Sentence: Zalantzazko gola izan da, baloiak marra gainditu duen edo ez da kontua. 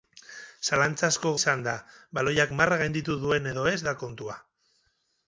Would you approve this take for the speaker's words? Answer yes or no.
no